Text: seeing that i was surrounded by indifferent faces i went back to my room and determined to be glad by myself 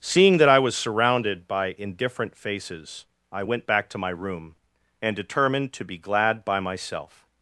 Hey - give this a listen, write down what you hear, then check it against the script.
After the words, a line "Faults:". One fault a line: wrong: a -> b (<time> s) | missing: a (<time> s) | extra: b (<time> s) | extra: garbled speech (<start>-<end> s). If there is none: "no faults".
seeing that i was surrounded by indifferent faces i went back to my room and determined to be glad by myself
Faults:
no faults